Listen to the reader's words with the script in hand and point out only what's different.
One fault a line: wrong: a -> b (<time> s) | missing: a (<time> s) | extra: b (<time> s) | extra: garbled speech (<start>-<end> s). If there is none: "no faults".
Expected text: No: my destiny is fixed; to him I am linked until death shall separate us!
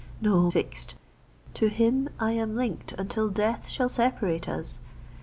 missing: my destiny is (0.5 s)